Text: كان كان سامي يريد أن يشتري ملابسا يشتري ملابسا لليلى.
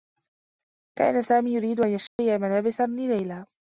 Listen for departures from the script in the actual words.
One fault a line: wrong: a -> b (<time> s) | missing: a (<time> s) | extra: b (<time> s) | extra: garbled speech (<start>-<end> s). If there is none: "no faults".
missing: كان (1.2 s)
missing: يشتري ملابسا (2.9 s)